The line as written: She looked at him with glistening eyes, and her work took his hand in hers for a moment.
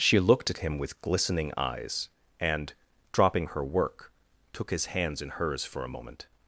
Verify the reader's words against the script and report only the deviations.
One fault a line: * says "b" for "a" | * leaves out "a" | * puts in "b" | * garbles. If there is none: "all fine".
* puts in "dropping"
* says "hands" for "hand"